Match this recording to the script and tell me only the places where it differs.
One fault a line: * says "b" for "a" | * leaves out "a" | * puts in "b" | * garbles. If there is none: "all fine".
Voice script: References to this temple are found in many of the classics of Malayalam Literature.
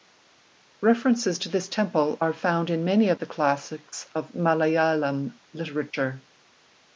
all fine